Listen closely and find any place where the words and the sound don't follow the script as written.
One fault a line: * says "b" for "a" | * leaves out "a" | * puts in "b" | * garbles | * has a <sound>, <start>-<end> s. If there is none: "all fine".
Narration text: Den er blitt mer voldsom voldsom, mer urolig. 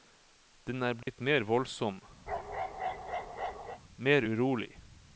* has a dropout, 1.0-1.1 s
* leaves out "voldsom"
* has a bark, 2.3-3.8 s